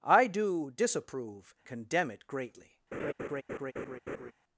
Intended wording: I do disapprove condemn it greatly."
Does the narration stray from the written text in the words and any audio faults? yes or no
yes